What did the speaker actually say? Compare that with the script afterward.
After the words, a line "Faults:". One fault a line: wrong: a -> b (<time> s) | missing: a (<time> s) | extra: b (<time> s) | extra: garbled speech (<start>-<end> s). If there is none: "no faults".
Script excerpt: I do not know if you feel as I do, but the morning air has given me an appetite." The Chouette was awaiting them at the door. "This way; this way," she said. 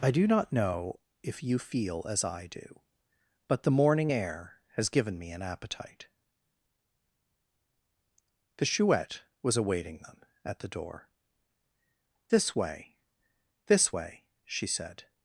I do not know if you feel as I do, but the morning air has given me an appetite." The Chouette was awaiting them at the door. "This way; this way," she said.
Faults:
no faults